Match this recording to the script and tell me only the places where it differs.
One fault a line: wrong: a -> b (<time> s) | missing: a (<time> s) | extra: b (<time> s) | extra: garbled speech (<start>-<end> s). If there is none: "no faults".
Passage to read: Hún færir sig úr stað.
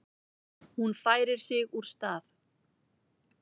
no faults